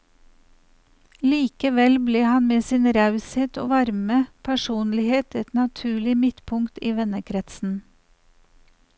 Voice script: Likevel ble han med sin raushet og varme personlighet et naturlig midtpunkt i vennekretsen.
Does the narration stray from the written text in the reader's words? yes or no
no